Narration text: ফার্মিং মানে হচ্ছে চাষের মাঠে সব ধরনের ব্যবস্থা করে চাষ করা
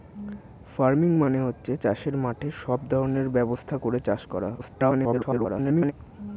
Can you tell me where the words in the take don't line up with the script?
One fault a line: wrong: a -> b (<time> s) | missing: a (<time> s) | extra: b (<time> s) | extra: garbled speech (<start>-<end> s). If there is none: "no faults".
extra: garbled speech (4.6-5.9 s)